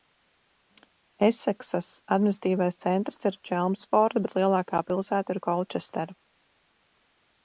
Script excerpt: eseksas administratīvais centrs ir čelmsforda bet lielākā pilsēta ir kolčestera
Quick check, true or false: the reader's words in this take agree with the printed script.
true